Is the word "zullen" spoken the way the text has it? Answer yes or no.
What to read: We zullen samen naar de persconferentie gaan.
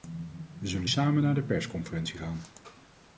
yes